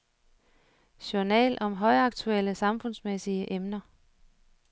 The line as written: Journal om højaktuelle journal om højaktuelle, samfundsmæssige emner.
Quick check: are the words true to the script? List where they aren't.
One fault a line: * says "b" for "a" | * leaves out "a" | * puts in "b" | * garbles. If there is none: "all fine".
* leaves out "journal om højaktuelle"